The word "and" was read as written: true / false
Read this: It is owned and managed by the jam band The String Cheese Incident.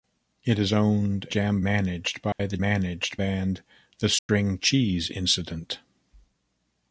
false